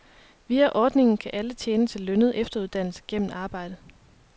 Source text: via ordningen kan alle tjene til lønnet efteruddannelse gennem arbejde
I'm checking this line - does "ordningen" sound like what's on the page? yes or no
yes